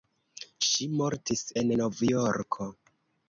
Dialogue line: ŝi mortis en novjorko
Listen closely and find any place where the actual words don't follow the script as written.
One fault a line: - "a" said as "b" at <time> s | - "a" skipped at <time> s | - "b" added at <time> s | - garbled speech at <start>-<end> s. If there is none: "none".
none